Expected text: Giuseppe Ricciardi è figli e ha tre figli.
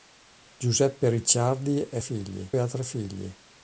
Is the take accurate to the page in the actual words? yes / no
yes